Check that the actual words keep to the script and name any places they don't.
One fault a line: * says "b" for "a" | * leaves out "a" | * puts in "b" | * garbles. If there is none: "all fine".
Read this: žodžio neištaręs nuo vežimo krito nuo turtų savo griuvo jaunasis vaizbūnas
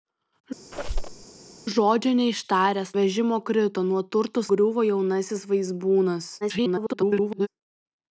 * leaves out "nuo"
* leaves out "savo"
* garbles